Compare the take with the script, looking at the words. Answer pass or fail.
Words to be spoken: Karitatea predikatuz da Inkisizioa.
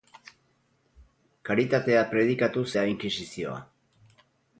pass